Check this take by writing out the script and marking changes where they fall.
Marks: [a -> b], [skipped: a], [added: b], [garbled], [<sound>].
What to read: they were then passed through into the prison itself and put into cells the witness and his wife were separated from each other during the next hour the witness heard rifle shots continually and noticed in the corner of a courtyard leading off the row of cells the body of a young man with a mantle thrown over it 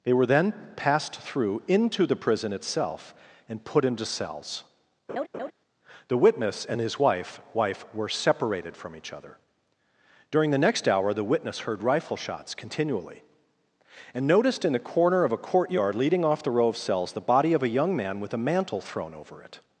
they were then passed through into the prison itself and put into cells [laugh] the witness and his wife [added: wife] were separated from each other during the next hour the witness heard rifle shots continually and noticed in the corner of a courtyard leading off the row of cells the body of a young man with a mantle thrown over it